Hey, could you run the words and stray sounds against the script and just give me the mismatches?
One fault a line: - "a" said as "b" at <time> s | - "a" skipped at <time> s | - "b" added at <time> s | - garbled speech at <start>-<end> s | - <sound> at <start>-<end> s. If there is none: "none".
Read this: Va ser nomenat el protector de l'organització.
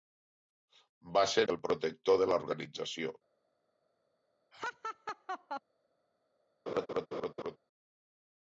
- "nomenat" skipped at 1.4 s
- laugh at 4.5-5.6 s
- laugh at 6.7-7.6 s